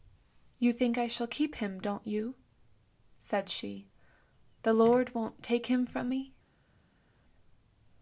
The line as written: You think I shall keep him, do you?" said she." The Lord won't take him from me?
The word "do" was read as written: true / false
false